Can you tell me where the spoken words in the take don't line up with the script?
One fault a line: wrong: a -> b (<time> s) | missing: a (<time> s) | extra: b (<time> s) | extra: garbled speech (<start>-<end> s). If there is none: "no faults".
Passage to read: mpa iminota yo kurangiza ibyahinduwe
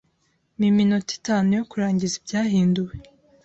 extra: itanu (1.2 s)